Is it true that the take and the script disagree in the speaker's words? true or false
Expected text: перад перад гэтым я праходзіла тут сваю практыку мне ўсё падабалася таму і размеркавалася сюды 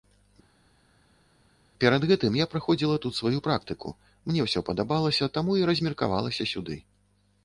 true